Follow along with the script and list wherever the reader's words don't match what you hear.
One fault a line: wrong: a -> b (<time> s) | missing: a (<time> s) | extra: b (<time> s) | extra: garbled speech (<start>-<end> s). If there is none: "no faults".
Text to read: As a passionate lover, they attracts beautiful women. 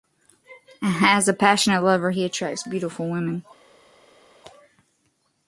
wrong: they -> he (2.1 s)